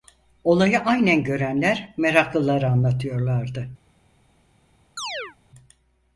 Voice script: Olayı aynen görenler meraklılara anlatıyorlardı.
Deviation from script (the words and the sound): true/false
true